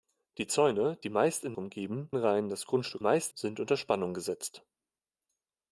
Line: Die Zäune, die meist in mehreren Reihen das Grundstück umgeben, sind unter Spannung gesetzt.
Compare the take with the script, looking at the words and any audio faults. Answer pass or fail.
fail